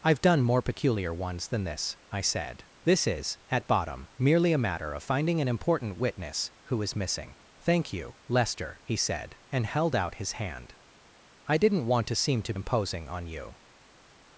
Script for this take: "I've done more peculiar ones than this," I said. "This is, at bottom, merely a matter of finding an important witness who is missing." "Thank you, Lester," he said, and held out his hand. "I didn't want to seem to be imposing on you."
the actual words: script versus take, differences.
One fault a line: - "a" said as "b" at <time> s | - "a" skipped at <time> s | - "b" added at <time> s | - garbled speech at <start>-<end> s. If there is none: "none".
- "be" skipped at 12.5 s